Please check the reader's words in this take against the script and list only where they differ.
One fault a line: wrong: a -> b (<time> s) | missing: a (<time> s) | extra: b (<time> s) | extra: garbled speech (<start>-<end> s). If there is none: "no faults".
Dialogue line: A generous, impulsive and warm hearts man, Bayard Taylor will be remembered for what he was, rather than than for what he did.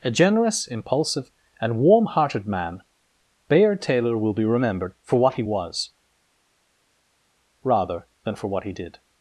wrong: hearts -> hearted (2.0 s)
missing: than (8.3 s)